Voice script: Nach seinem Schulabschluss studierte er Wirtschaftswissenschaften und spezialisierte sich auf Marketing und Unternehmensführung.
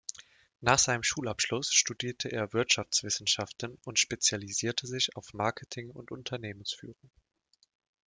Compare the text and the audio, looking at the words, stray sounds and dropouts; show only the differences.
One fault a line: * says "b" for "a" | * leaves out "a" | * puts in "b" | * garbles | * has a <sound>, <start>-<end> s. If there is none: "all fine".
all fine